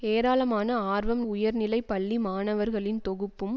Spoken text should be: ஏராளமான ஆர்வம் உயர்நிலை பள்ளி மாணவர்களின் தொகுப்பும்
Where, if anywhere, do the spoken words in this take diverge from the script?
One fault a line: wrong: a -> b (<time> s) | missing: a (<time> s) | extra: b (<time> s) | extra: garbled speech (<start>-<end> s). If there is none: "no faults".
no faults